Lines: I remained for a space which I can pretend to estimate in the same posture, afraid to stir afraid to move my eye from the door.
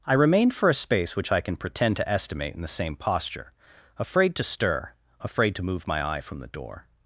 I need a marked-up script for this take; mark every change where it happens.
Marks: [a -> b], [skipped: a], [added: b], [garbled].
I remained for a space which I can pretend to estimate in the same posture, afraid to stir afraid to move my eye from the door.